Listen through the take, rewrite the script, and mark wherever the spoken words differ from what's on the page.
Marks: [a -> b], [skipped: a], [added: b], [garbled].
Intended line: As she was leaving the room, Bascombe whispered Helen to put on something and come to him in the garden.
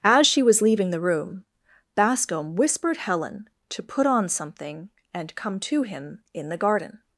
As she was leaving the room, Bascombe whispered Helen to put on something and come to him in the garden.